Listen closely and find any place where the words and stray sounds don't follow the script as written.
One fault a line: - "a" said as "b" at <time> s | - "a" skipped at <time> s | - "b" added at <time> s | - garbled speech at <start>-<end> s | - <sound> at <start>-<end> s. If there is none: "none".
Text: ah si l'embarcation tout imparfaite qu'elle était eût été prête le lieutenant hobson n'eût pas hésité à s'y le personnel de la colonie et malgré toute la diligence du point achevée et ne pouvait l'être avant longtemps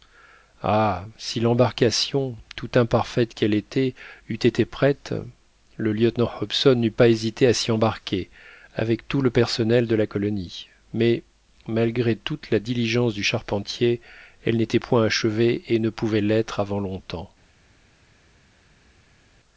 - "embarquer avec tout" added at 7.7 s
- "et" said as "mais" at 10.9 s
- "charpentier elle n'était" added at 13.2 s